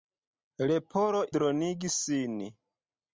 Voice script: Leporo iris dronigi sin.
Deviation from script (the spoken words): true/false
true